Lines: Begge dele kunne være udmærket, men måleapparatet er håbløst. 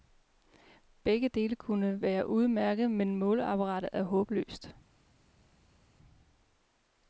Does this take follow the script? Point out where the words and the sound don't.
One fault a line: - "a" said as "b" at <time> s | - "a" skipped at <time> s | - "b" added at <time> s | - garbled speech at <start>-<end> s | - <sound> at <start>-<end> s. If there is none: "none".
none